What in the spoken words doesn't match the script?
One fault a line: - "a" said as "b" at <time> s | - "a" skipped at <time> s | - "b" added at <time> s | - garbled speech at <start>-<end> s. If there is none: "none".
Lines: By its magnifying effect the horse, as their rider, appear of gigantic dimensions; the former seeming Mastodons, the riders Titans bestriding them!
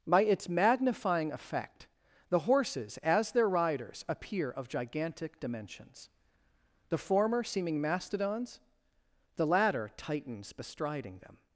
- "horse" said as "horses" at 2.4 s
- "rider" said as "riders" at 3.5 s
- "riders" said as "latter" at 9.4 s